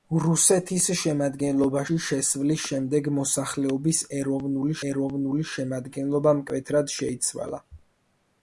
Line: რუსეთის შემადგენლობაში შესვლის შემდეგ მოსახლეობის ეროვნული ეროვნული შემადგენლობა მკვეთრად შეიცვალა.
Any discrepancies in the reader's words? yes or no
no